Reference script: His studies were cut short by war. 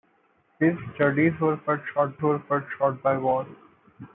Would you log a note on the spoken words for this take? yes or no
yes